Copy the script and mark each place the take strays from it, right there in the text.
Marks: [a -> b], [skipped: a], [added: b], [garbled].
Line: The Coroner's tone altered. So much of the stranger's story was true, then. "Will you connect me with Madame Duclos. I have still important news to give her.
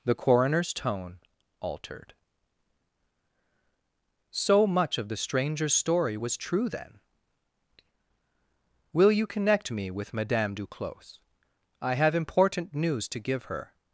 The Coroner's tone altered. So much of the stranger's story was true, then. "Will you connect me with Madame Duclos. I have [skipped: still] important news to give her.